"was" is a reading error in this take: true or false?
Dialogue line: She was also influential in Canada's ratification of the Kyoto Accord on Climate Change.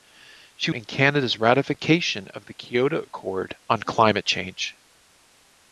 true